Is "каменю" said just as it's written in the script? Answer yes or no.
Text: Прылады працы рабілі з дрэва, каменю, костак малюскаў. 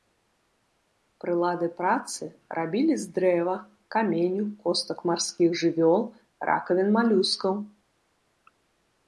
yes